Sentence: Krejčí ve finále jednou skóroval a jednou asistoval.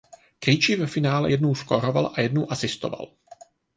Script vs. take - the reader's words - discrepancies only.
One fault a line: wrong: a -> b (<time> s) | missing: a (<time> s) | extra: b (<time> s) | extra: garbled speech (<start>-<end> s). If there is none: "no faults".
no faults